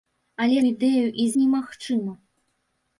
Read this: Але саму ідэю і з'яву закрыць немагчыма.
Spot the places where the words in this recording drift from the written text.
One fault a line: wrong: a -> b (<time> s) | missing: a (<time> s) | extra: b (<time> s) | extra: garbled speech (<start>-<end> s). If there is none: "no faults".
missing: саму (0.6 s)
missing: з'яву закрыць (1.3 s)